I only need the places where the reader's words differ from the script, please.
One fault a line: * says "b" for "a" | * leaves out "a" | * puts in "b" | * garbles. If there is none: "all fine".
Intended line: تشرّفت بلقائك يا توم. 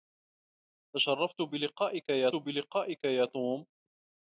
* puts in "بلقائك يا"